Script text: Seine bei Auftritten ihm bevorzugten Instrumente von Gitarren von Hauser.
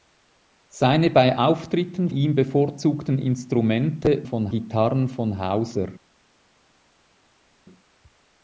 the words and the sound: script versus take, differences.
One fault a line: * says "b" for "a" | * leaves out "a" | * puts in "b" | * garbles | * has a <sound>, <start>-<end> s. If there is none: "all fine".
all fine